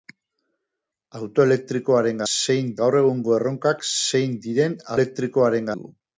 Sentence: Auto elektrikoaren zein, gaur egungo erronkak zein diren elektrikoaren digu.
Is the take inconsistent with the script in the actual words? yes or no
no